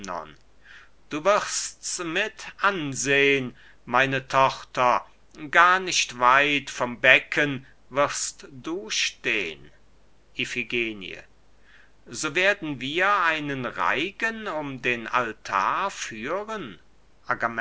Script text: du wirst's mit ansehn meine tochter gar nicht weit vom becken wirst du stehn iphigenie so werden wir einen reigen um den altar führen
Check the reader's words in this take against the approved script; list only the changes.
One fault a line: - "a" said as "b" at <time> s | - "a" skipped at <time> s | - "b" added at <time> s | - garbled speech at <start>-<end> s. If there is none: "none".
none